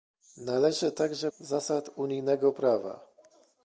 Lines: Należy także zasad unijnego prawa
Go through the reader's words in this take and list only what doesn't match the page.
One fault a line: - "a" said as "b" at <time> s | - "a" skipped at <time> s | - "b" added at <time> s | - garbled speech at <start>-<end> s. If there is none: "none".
none